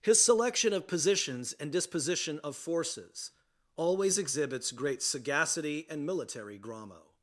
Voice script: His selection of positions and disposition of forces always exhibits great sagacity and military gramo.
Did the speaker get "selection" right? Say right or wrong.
right